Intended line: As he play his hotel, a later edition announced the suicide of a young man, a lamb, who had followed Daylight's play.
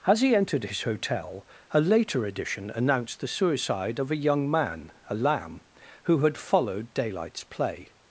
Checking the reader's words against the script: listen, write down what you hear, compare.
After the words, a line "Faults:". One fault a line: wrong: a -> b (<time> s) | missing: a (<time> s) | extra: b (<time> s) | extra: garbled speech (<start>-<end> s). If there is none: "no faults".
As he entered his hotel, a later edition announced the suicide of a young man, a lamb, who had followed Daylight's play.
Faults:
wrong: play -> entered (0.3 s)